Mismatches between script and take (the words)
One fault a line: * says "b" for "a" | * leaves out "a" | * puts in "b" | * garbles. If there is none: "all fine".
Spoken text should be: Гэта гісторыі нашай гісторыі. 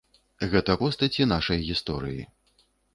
* says "постаці" for "гісторыі"